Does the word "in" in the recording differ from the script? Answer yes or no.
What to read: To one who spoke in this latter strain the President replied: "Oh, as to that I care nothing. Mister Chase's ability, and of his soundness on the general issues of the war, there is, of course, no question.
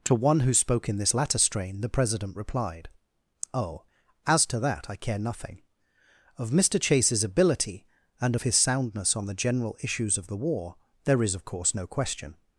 no